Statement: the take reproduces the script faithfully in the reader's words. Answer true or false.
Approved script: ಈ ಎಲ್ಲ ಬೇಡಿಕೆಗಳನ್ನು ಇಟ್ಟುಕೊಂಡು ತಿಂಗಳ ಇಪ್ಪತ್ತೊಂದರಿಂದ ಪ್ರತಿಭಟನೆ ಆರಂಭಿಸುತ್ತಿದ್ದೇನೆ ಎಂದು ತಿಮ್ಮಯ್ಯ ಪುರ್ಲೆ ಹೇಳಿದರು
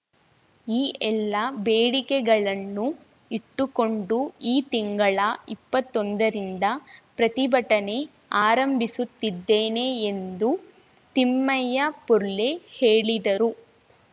false